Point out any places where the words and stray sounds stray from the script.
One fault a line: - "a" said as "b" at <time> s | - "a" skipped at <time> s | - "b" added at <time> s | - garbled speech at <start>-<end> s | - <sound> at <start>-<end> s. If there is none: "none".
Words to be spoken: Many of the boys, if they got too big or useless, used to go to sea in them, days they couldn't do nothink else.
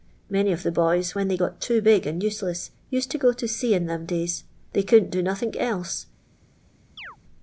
- "if" said as "when" at 1.1 s
- "or" said as "and" at 2.0 s
- chirp at 7.0-7.2 s